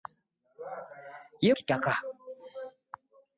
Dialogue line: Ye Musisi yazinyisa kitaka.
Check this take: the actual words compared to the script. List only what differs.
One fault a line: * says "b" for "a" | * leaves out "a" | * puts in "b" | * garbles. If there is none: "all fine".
* leaves out "Musisi yazinyisa"